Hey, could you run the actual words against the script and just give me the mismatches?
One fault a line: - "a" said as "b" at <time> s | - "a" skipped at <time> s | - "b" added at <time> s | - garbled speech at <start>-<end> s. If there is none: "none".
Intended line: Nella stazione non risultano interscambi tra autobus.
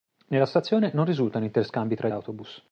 none